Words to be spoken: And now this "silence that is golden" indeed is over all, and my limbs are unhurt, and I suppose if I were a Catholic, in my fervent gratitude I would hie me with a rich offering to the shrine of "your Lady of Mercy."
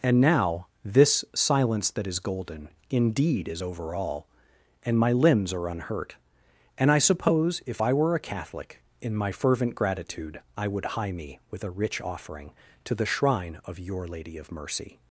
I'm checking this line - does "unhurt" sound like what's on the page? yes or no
yes